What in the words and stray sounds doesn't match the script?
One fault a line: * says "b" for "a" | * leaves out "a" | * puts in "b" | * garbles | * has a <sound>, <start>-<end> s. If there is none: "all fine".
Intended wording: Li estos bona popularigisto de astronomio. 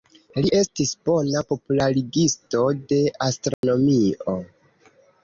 * says "estis" for "estos"
* has a dropout, 3.5-3.6 s